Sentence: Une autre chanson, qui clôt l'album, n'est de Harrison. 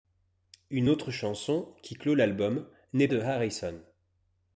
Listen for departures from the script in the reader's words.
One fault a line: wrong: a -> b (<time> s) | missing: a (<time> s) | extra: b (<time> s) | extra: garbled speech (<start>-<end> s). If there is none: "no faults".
no faults